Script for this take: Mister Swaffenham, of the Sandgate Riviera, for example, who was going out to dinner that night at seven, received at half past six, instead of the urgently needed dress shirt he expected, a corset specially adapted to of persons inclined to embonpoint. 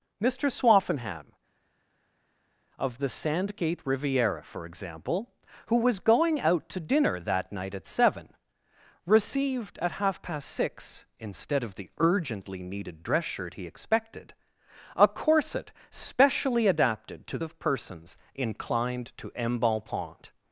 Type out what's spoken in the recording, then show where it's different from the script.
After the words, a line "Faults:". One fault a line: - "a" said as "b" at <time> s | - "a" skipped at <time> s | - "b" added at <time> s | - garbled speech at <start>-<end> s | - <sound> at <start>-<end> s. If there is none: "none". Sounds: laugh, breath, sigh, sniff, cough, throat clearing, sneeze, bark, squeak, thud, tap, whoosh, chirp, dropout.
Mister Swaffenham, of the Sandgate Riviera, for example, who was going out to dinner that night at seven, received at half past six, instead of the urgently needed dress shirt he expected, a corset specially adapted to of persons inclined to embonpoint.
Faults:
none